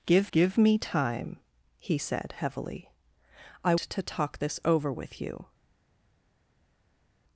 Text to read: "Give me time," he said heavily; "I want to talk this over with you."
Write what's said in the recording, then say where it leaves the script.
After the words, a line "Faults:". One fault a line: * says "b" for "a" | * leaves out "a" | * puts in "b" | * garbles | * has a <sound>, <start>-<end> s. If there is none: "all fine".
"Give give me time," he said heavily; "I to talk this over with you."
Faults:
* puts in "give"
* leaves out "want"